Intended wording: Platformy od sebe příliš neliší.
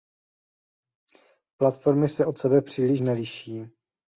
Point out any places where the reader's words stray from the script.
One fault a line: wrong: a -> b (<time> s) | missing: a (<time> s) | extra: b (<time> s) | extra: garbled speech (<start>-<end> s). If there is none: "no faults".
extra: se (2.1 s)